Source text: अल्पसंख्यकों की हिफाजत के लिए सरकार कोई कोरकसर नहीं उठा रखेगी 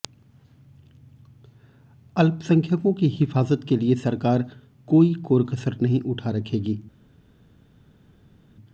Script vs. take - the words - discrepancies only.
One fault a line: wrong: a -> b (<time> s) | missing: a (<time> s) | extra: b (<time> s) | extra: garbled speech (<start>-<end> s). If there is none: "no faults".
no faults